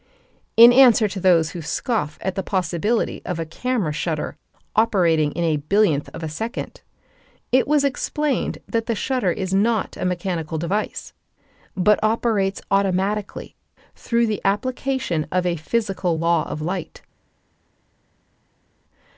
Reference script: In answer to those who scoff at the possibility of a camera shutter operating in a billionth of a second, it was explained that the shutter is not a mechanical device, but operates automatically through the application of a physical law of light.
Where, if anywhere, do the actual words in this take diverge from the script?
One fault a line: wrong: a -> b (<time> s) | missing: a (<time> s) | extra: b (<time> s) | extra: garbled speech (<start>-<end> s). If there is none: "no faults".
no faults